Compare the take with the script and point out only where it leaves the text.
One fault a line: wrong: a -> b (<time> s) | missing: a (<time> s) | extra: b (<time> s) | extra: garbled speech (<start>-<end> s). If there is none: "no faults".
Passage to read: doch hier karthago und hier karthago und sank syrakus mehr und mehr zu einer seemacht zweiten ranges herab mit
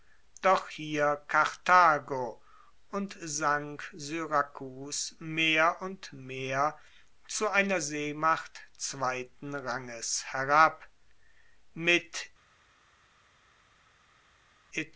missing: hier karthago und (3.2 s)